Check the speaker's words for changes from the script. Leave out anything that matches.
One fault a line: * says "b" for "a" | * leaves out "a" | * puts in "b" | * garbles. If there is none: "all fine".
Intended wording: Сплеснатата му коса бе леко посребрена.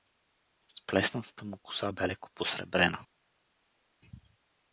all fine